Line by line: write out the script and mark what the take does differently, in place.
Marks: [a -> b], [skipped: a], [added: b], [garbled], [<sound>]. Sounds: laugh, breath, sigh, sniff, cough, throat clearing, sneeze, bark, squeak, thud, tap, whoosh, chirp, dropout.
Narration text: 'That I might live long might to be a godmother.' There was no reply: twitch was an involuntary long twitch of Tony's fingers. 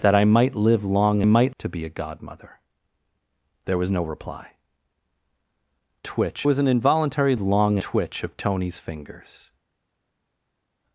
'That I might live long might to be a godmother.' There was no reply: twitch was an involuntary long twitch of Tony's fingers.